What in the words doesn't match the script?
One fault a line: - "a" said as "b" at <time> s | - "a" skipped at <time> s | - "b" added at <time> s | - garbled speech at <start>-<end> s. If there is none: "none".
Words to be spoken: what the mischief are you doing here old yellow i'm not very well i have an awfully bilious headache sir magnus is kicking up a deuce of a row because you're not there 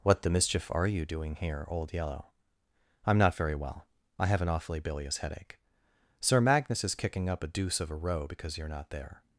none